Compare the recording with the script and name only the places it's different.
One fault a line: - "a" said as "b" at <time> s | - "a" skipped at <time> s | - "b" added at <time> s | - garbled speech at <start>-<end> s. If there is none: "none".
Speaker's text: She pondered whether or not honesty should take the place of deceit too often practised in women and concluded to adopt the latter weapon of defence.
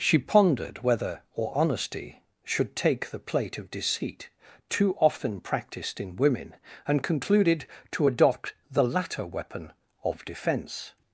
- "not" skipped at 1.6 s
- "place" said as "plate" at 3.2 s